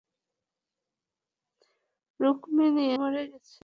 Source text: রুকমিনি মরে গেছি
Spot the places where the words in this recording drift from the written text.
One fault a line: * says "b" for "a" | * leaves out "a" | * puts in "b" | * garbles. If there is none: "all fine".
all fine